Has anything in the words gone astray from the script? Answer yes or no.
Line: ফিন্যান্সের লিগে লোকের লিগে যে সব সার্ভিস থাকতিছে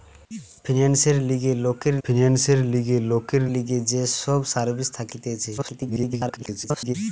yes